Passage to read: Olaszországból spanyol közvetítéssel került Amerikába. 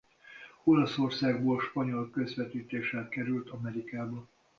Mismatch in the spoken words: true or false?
false